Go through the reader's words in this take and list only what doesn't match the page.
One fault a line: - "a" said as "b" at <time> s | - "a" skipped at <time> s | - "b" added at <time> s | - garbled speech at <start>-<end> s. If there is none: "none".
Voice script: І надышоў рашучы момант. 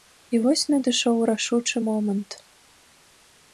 - "вось" added at 0.4 s